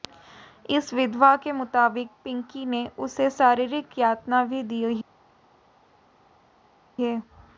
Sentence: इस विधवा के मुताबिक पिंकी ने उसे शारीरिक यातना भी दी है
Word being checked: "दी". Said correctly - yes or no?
yes